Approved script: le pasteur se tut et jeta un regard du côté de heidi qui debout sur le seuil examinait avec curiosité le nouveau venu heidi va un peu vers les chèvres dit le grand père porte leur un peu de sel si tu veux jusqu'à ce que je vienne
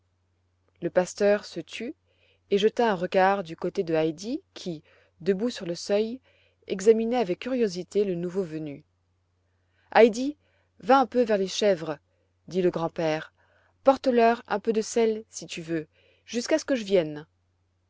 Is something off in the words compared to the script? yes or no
no